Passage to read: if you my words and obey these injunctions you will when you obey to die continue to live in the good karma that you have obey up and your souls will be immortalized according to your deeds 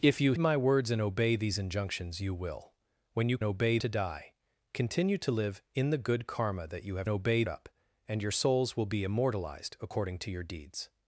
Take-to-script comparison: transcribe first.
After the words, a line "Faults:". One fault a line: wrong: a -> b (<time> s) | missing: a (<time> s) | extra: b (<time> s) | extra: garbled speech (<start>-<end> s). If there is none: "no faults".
if you my words and obey these injunctions you will when you obey to die continue to live in the good karma that you have obey up and your souls will be immortalized according to your deeds
Faults:
no faults